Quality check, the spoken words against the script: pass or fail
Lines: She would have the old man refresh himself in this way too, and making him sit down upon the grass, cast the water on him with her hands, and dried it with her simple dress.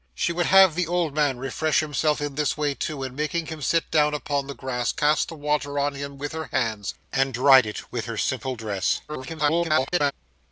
fail